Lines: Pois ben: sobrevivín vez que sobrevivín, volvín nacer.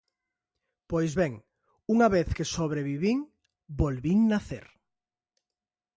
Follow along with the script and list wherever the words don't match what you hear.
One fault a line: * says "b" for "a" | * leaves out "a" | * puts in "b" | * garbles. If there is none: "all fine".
* says "unha" for "sobrevivín"